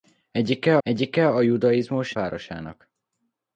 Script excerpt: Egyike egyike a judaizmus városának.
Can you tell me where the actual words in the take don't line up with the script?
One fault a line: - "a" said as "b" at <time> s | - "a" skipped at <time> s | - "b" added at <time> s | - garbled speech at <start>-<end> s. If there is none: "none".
none